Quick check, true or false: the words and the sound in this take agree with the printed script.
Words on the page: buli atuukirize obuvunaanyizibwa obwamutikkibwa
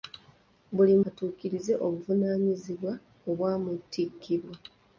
true